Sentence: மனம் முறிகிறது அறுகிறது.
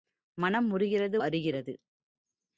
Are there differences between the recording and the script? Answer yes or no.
no